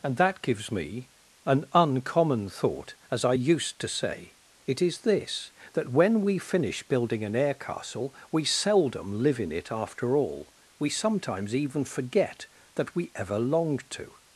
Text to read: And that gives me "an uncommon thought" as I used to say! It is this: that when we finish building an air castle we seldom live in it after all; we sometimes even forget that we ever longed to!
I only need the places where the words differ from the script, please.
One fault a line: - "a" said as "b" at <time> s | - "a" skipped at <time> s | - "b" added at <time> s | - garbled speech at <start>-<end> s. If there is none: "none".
none